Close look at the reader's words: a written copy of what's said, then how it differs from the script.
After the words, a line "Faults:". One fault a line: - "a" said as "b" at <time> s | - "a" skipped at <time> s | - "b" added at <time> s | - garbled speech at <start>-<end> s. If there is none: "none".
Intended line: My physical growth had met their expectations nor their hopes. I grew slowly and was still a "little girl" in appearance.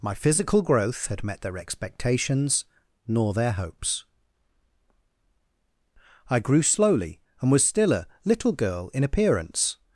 My physical growth had met their expectations nor their hopes. I grew slowly and was still a "little girl" in appearance.
Faults:
none